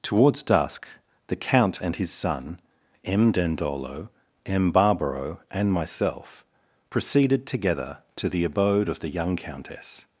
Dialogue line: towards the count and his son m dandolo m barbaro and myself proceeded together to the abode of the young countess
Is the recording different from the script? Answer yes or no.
yes